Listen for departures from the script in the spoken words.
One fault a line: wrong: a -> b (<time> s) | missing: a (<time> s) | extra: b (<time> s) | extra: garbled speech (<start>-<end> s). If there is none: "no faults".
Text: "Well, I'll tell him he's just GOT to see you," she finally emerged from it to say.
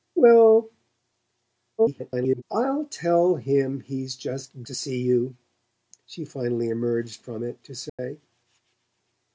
extra: garbled speech (1.8-2.4 s)
missing: GOT (4.6 s)